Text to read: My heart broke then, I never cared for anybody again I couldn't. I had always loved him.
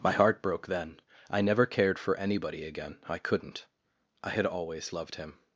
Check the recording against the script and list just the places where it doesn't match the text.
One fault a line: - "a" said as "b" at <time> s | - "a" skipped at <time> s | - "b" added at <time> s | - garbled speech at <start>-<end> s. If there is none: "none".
none